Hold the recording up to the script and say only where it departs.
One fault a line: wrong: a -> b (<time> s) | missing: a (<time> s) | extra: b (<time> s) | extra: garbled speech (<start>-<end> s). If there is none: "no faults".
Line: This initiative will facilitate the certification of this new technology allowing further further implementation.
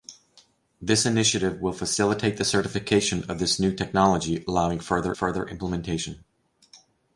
no faults